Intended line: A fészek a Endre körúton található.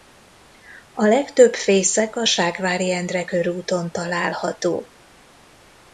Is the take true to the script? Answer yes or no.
no